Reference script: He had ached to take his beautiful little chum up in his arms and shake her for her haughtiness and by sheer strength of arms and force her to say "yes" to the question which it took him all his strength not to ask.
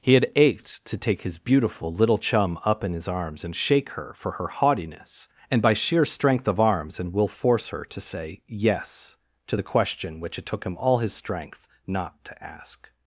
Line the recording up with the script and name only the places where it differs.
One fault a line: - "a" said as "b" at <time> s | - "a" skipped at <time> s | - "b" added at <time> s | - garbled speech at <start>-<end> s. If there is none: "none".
- "will" added at 7.1 s